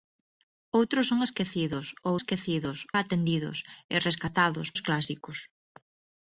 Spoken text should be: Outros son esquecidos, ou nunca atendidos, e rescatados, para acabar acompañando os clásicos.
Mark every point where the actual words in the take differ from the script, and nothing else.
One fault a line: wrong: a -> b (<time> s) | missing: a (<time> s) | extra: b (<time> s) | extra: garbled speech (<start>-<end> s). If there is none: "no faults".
wrong: nunca -> esquecidos (2.2 s)
missing: para acabar acompañando (4.7 s)